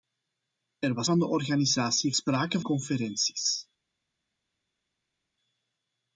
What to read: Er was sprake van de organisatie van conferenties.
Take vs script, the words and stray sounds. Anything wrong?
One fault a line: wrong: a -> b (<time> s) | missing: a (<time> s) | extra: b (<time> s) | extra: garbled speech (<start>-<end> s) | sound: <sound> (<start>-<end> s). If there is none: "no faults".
missing: sprake (1.1 s)
wrong: van -> sprake (2.1 s)